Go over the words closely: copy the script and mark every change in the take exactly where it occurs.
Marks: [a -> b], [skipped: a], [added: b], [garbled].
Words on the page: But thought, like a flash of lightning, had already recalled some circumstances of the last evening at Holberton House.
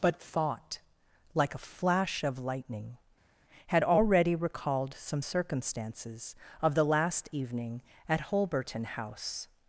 But thought, like a flash of lightning, had already recalled some circumstances of the last evening at Holberton House.